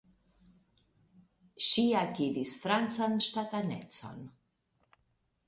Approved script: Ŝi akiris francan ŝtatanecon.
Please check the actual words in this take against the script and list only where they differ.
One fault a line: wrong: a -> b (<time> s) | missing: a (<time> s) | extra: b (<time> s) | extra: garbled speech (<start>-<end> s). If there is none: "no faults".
no faults